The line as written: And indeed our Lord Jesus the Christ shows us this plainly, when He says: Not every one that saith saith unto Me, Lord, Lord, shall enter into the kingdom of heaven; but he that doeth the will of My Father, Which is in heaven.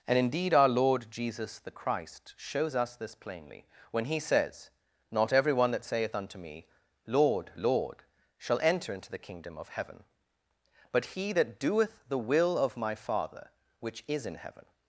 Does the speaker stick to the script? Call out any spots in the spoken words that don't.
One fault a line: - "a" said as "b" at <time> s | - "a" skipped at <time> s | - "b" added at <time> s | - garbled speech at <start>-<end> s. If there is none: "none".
- "saith" skipped at 6.2 s